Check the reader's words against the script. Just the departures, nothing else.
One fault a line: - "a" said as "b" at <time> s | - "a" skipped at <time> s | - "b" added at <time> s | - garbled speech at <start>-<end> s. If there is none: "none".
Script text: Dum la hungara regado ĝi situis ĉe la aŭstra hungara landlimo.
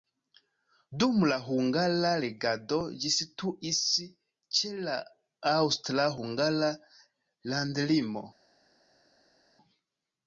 none